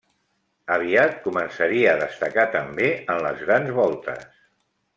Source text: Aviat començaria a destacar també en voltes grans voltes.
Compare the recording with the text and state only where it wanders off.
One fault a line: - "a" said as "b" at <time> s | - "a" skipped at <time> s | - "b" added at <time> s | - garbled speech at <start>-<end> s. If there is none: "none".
- "voltes" said as "les" at 3.3 s